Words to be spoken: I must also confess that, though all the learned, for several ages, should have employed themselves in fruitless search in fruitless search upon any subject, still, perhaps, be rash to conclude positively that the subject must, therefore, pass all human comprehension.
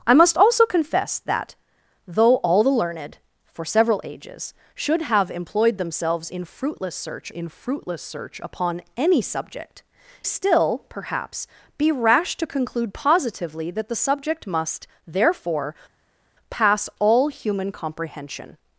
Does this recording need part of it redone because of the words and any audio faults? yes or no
no